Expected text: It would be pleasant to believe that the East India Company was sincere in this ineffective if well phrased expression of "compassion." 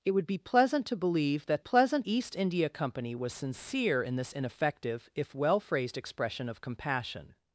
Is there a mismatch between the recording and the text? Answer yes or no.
yes